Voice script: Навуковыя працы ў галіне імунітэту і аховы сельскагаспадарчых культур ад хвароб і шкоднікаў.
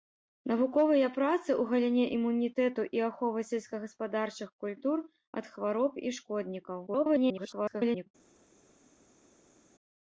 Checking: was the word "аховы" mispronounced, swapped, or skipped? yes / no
no